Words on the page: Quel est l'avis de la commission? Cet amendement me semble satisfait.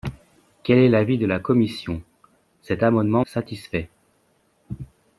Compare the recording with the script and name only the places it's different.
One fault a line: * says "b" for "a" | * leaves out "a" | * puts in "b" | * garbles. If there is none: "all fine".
* leaves out "me semble"